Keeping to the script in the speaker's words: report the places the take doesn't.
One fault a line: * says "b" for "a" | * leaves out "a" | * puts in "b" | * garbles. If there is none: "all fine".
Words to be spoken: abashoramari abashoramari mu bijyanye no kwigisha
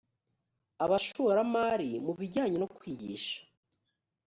* leaves out "abashoramari"